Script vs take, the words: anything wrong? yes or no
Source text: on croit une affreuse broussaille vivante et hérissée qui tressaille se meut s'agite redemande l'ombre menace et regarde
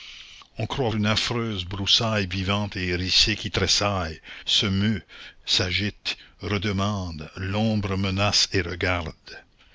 no